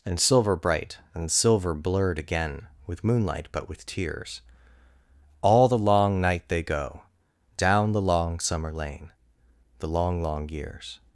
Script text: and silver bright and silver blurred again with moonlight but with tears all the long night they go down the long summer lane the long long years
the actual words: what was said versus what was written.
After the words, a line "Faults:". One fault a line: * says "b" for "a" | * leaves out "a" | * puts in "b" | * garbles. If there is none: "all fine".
and silver bright and silver blurred again with moonlight but with tears all the long night they go down the long summer lane the long long years
Faults:
all fine